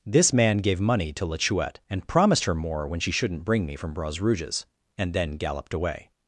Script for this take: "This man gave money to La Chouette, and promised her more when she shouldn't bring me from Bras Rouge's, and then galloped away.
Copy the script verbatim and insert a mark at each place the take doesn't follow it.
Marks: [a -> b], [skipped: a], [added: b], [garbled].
"This man gave money to La Chouette, and promised her more when she shouldn't bring me from Bras Rouge's, and then galloped away.